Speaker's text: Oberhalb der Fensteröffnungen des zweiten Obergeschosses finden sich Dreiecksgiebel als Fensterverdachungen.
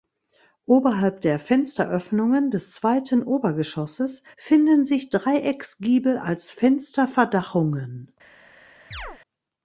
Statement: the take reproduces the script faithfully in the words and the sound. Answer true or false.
false